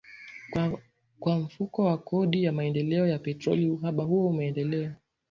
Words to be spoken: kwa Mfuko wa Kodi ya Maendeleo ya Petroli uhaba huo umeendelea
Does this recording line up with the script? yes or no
yes